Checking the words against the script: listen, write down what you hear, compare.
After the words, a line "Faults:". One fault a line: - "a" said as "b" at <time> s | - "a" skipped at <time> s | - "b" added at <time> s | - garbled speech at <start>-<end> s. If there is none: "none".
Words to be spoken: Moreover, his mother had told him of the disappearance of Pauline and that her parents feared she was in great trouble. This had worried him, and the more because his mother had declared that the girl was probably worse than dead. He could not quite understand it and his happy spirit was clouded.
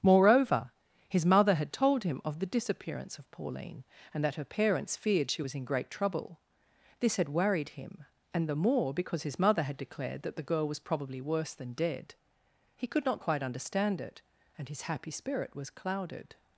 Moreover, his mother had told him of the disappearance of Pauline and that her parents feared she was in great trouble. This had worried him, and the more because his mother had declared that the girl was probably worse than dead. He could not quite understand it and his happy spirit was clouded.
Faults:
none